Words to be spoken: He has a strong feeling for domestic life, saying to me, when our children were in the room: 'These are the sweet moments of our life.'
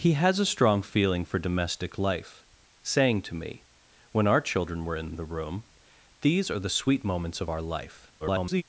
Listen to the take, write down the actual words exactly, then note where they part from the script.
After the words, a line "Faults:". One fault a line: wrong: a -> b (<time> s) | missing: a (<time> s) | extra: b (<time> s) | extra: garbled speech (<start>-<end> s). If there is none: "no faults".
He has a strong feeling for domestic life, saying to me, when our children were in the room: 'These are the sweet moments of our life.' [garbled]
Faults:
extra: garbled speech (8.2-8.6 s)